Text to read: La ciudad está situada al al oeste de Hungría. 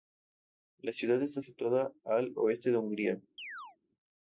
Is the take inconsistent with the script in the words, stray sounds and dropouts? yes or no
yes